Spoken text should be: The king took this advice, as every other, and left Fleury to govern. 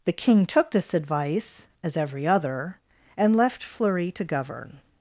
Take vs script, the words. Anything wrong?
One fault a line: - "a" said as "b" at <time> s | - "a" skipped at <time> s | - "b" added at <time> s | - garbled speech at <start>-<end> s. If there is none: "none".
none